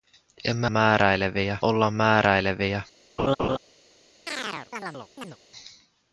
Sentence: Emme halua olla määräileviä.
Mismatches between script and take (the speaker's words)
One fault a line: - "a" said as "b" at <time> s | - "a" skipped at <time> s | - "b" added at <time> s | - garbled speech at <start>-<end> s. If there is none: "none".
- "halua" said as "määräileviä" at 0.7 s